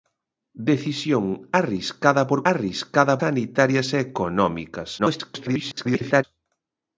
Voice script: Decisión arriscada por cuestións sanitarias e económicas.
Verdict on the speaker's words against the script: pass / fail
fail